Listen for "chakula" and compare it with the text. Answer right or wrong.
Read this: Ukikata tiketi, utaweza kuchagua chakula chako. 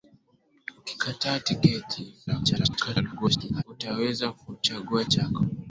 wrong